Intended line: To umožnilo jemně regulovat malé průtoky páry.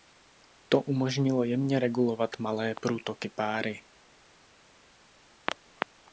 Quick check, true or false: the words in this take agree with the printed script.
true